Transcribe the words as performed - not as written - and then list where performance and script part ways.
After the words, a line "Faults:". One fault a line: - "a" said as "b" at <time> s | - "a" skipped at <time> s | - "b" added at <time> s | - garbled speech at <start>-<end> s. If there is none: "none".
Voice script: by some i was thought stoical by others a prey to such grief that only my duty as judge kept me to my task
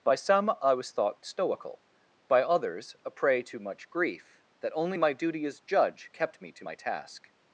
by some i was thought stoical by others a prey to much grief that only my duty as judge kept me to my task
Faults:
- "such" said as "much" at 3.6 s